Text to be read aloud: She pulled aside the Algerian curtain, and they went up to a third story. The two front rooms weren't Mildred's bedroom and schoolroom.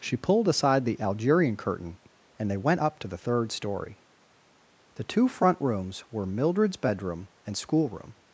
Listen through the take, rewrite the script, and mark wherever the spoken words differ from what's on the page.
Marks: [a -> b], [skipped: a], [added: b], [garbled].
She pulled aside the Algerian curtain, and they went up to [a -> the] third story. The two front rooms [weren't -> were] Mildred's bedroom and schoolroom.